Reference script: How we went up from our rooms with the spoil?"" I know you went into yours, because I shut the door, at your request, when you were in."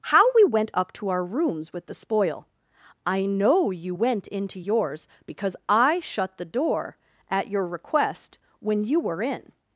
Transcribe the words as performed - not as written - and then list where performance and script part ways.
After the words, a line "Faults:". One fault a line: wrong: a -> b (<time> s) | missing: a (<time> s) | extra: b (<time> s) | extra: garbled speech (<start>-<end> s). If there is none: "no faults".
How we went up to our rooms with the spoil?"" I know you went into yours, because I shut the door, at your request, when you were in."
Faults:
wrong: from -> to (0.9 s)